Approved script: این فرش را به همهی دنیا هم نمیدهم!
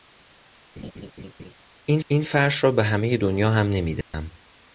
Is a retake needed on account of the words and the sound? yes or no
yes